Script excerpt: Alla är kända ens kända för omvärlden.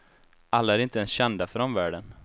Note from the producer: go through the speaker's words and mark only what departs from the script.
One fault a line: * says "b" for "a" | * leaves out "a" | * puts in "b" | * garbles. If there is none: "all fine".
* says "inte" for "kända"